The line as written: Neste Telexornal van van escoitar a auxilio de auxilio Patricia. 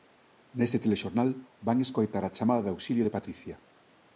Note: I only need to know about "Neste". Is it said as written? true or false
true